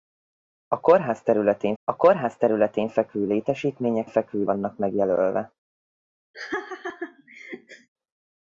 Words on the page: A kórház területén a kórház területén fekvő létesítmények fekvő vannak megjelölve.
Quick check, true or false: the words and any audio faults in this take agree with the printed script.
false